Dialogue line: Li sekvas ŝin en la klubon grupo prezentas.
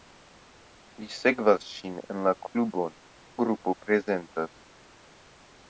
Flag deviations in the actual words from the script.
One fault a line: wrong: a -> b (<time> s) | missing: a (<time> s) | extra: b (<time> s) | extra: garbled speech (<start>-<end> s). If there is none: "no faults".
no faults